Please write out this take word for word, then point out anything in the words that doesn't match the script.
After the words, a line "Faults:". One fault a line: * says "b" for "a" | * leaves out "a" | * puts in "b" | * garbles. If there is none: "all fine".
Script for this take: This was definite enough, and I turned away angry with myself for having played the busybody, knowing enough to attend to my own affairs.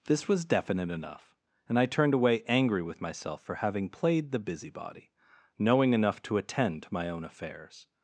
This was definite enough, and I turned away angry with myself for having played the busybody, knowing enough to attend to my own affairs.
Faults:
all fine